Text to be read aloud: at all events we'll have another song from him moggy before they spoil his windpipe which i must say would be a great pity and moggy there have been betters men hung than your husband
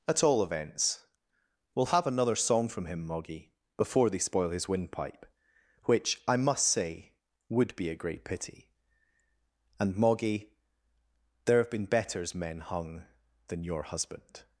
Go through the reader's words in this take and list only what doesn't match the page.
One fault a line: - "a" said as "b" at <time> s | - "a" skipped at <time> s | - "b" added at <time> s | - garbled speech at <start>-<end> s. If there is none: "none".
none